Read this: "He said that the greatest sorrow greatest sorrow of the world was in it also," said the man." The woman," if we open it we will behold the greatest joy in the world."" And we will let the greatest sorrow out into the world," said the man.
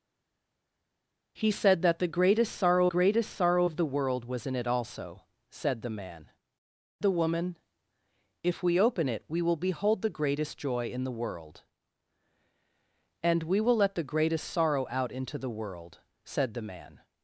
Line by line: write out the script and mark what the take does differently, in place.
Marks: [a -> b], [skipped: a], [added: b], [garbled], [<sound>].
"He said that the greatest sorrow greatest sorrow of the world was in it also," said the man." The woman," if we open it we will behold the greatest joy in the world."" And we will let the greatest sorrow out into the world," said the man.